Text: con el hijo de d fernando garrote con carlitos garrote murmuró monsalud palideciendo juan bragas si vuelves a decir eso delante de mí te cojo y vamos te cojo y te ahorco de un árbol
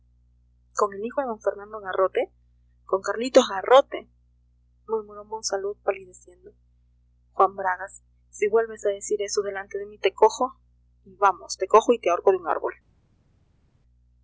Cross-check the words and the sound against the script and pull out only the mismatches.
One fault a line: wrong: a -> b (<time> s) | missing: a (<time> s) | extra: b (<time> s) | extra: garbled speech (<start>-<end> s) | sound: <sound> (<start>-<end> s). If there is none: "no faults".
no faults